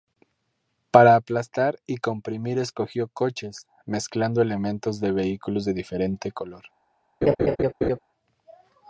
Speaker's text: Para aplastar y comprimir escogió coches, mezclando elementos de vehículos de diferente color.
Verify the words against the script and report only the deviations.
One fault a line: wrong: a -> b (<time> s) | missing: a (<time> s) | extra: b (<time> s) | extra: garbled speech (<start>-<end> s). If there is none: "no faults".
no faults